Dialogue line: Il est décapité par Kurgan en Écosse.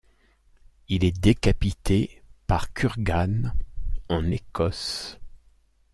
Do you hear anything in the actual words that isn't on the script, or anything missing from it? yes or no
no